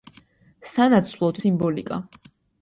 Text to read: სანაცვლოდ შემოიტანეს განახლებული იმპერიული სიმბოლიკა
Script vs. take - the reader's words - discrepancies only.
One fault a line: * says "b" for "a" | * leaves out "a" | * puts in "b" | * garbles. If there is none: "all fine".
* leaves out "შემოიტანეს განახლებული იმპერიული"